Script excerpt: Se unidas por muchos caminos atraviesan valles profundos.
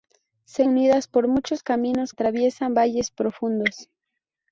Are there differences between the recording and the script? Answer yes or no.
no